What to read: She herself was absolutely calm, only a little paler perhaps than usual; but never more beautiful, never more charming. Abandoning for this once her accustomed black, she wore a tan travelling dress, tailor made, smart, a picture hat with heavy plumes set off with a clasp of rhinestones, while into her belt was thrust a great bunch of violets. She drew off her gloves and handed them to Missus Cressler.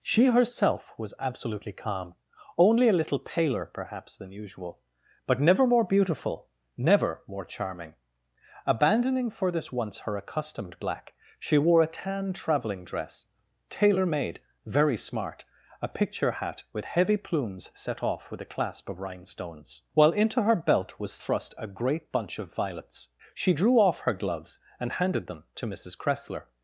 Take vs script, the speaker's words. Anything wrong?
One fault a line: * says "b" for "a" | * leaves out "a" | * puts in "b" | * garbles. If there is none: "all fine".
* puts in "very"